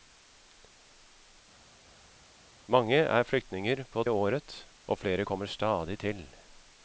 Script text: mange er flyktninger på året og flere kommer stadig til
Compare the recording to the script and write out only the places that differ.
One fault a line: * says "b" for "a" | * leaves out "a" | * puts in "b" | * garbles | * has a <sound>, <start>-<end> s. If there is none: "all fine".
all fine